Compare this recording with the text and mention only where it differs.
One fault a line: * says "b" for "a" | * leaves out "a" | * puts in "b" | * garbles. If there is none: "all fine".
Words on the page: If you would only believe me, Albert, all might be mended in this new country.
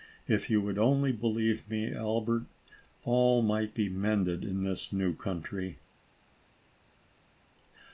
all fine